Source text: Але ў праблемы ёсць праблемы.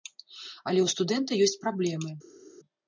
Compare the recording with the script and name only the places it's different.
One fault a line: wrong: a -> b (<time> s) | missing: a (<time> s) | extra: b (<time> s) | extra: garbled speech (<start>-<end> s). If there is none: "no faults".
wrong: праблемы -> студэнта (0.9 s)